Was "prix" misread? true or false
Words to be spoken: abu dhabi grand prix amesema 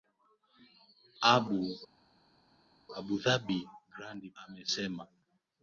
true